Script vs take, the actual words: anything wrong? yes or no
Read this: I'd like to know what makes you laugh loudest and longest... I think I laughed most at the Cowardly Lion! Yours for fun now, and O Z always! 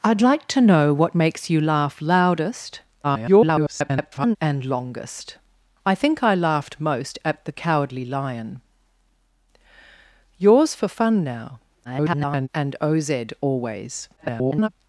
yes